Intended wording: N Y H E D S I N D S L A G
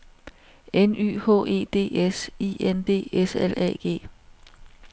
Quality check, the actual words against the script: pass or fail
pass